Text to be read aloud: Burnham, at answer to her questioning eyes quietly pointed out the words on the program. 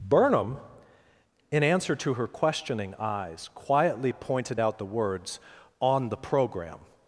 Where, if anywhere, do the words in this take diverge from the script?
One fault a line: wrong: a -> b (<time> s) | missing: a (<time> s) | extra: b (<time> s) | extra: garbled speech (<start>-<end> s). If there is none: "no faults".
wrong: at -> in (1.5 s)